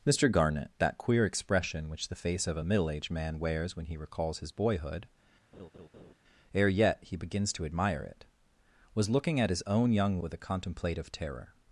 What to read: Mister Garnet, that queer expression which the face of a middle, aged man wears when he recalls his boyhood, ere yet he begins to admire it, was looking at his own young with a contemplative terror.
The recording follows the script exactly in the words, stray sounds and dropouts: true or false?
false